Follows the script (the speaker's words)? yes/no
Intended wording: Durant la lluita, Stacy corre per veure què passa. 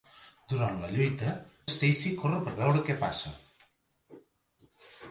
yes